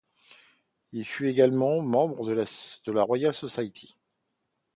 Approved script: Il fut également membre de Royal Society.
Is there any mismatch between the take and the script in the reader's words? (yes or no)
yes